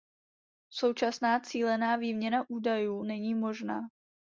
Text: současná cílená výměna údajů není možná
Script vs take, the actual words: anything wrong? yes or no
no